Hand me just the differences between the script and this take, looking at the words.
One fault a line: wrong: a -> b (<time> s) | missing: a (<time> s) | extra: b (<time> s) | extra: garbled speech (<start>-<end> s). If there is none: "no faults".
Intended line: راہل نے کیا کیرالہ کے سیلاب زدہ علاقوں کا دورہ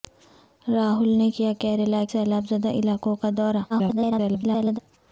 missing: کے (2.0 s)
extra: garbled speech (3.7-4.8 s)